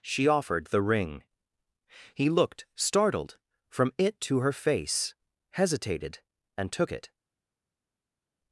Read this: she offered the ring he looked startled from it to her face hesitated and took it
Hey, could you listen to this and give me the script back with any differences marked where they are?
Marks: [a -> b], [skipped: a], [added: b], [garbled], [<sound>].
she offered the ring he looked startled from it to her face hesitated and took it